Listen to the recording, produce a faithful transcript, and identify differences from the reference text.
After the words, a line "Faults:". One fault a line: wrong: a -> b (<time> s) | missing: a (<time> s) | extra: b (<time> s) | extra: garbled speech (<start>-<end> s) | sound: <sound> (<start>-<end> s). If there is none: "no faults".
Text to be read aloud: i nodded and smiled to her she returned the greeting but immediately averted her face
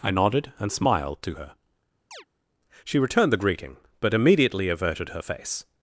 i nodded and smiled to her she returned the greeting but immediately averted her face
Faults:
sound: chirp (2.1-2.2 s)